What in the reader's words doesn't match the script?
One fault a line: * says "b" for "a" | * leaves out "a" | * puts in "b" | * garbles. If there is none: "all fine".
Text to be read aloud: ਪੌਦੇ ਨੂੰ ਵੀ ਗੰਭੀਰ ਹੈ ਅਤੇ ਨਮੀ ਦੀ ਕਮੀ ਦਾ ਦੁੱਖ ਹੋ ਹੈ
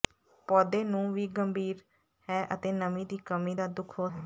all fine